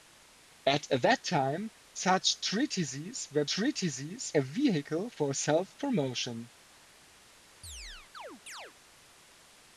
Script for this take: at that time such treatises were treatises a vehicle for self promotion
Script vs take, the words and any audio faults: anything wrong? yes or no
yes